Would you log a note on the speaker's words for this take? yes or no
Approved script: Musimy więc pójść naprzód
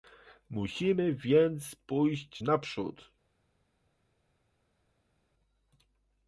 no